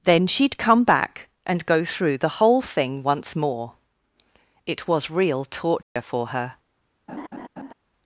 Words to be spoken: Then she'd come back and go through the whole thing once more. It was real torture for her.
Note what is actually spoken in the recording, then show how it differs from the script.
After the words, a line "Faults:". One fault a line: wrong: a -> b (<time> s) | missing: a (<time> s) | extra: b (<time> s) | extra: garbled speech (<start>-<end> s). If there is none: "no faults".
Then she'd come back and go through the whole thing once more. It was real torture for her.
Faults:
no faults